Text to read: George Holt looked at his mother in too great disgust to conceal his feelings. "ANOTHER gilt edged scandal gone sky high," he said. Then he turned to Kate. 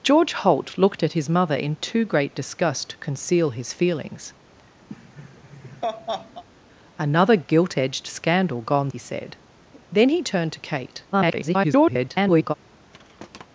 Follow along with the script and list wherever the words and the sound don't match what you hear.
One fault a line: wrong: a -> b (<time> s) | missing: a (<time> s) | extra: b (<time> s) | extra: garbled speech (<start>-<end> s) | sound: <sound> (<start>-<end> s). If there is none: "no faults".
sound: laugh (4.9-6.4 s)
missing: sky high (8.9 s)
extra: garbled speech (11.1-12.5 s)
sound: thud (12.9-13.5 s)